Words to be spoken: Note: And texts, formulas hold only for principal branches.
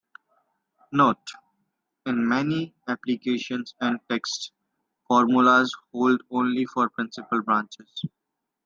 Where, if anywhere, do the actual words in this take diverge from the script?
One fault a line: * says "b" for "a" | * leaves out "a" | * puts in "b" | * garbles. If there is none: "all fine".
* puts in "In many applications"